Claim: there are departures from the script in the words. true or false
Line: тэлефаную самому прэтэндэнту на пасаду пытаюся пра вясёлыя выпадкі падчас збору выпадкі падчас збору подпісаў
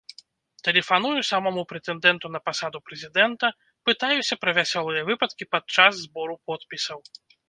true